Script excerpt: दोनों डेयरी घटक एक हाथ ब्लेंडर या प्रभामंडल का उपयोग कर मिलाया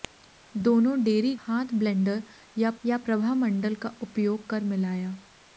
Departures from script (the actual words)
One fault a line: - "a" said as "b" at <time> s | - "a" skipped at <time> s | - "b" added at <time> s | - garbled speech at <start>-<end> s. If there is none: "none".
- "घटक एक" skipped at 1.4 s
- "या" added at 2.8 s